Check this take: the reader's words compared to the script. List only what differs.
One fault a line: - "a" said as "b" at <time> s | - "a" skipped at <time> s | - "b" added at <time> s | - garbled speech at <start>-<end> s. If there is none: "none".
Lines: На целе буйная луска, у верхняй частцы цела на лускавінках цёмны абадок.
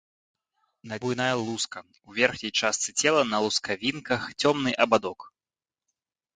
- "целе" skipped at 1.0 s